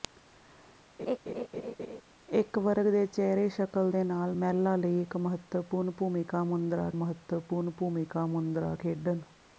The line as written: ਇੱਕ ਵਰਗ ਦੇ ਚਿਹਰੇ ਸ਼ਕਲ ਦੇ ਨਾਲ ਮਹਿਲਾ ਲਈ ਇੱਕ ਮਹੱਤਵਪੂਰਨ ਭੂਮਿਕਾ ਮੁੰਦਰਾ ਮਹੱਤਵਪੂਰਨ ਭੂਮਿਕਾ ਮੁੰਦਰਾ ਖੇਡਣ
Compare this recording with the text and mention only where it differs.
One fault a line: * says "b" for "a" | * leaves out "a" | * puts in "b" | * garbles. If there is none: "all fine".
all fine